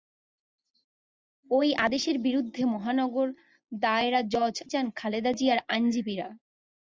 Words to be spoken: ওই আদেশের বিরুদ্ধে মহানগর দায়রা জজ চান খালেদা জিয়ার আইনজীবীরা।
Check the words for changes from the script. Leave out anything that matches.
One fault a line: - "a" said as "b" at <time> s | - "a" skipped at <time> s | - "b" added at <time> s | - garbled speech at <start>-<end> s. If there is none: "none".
none